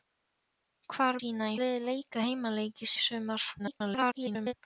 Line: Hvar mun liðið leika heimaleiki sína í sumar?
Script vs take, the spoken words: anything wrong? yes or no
yes